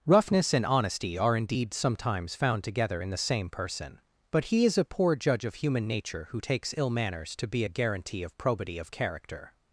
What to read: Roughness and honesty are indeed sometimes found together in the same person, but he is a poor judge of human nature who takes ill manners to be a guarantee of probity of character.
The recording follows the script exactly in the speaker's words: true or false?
true